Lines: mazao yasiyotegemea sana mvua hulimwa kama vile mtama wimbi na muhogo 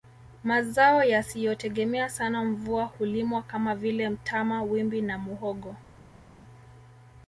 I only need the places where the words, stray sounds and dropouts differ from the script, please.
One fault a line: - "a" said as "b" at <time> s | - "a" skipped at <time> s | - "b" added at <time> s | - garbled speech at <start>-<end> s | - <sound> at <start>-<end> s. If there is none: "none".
none